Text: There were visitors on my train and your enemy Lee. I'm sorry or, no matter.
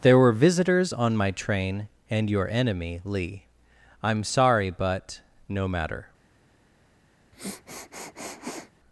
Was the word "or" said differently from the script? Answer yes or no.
yes